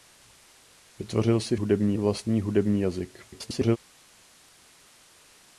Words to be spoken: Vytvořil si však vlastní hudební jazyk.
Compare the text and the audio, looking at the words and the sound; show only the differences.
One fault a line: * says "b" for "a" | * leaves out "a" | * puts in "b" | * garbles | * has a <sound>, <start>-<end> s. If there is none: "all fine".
* says "hudební" for "však"
* garbles